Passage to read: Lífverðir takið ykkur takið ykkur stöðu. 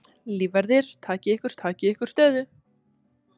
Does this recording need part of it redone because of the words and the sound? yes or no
no